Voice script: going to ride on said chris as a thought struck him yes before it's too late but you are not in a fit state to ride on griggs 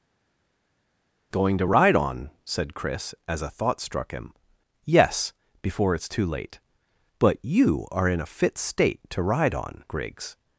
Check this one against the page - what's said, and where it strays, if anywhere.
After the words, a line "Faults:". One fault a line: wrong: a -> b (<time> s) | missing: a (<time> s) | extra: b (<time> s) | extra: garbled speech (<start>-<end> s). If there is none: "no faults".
going to ride on said chris as a thought struck him yes before it's too late but you are in a fit state to ride on griggs
Faults:
missing: not (8.1 s)